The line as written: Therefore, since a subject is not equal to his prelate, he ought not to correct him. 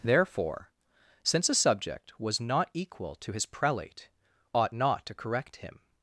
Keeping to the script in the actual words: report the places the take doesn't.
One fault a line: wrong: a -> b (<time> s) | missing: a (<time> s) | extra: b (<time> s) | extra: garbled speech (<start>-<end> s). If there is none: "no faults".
wrong: is -> was (2.2 s)
missing: he (4.1 s)